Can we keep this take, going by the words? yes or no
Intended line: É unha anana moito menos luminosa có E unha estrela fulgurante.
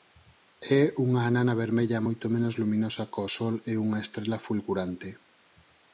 no